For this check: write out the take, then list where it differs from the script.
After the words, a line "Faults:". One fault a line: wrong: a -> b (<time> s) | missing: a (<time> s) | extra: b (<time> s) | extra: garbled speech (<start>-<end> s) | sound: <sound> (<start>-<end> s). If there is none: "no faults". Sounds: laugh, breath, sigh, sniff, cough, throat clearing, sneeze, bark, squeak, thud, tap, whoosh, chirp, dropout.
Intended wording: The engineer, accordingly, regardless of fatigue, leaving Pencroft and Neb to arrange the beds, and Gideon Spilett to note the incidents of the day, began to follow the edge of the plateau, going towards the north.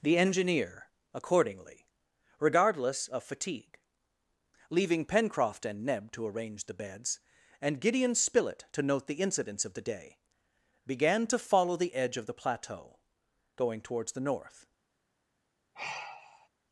The engineer, accordingly, regardless of fatigue, leaving Pencroft and Neb to arrange the beds, and Gideon Spilett to note the incidents of the day, began to follow the edge of the plateau, going towards the north.
Faults:
sound: sigh (15.7-16.5 s)